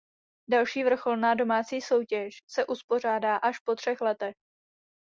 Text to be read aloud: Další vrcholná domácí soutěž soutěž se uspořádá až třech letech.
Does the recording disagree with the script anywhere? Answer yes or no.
yes